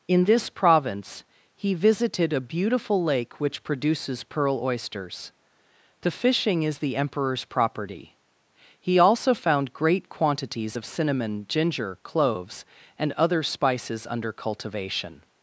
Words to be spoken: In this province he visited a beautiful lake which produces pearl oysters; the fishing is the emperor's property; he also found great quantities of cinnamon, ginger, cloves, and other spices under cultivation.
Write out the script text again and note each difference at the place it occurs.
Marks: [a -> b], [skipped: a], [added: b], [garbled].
In this province he visited a beautiful lake which produces pearl oysters; the fishing is the emperor's property; he also found great quantities of cinnamon, ginger, cloves, and other spices under cultivation.